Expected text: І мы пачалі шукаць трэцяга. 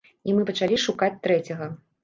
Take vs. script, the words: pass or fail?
pass